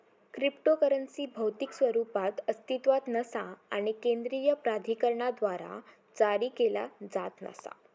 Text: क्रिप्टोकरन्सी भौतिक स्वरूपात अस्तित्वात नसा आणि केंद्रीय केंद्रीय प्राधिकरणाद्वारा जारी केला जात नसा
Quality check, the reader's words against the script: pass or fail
fail